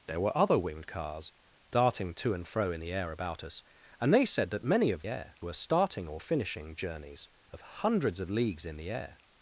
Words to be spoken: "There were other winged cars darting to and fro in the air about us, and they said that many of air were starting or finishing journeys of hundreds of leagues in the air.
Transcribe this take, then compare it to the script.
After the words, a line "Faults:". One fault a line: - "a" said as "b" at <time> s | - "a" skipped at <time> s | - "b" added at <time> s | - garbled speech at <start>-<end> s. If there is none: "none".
"There were other winged cars darting to and fro in the air about us, and they said that many of air were starting or finishing journeys of hundreds of leagues in the air.
Faults:
none